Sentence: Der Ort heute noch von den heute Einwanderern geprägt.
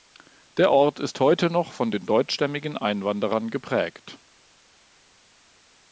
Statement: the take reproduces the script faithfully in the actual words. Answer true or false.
false